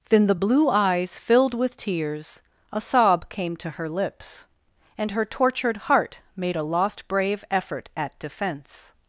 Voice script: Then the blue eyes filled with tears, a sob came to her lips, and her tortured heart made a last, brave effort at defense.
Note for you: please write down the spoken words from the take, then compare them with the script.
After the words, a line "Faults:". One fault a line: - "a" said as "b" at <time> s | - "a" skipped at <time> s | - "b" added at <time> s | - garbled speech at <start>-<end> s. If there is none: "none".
Then the blue eyes filled with tears, a sob came to her lips, and her tortured heart made a lost, brave effort at defense.
Faults:
- "last" said as "lost" at 6.6 s